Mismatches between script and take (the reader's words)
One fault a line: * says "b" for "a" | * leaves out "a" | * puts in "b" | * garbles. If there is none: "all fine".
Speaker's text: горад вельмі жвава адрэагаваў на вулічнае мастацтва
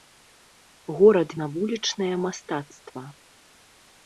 * leaves out "вельмі жвава адрэагаваў"